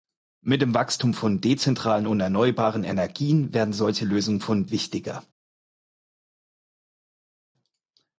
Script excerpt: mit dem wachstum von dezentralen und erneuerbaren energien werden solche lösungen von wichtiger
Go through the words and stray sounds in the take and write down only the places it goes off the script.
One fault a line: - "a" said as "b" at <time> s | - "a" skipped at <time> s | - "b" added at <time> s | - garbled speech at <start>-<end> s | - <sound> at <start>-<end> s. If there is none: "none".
none